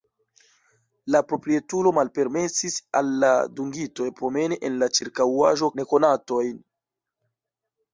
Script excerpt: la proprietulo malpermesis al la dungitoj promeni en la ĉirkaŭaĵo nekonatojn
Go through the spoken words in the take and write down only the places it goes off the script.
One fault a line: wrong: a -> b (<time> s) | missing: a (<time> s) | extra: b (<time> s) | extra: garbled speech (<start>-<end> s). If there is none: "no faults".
no faults